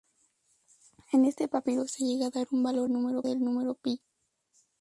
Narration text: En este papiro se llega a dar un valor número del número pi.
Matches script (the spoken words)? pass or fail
pass